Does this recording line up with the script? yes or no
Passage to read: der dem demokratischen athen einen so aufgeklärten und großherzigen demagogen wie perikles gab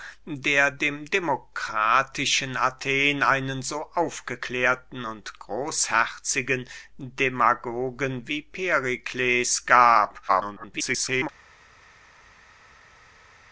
no